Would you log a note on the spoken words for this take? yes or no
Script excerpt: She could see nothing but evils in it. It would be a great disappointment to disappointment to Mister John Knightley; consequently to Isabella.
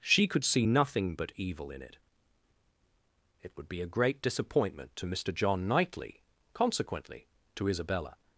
yes